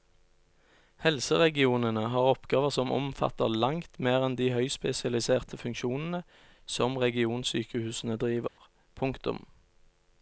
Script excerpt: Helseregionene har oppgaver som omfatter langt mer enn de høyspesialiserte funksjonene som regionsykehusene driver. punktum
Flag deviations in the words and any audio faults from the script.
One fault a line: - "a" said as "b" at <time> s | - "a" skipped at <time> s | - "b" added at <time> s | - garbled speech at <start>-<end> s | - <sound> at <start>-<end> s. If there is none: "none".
- dropout at 8.5-8.6 s